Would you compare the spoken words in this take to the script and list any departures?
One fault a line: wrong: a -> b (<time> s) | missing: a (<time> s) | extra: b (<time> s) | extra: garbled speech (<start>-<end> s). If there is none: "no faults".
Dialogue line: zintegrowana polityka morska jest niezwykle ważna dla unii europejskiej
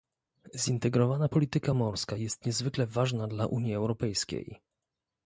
no faults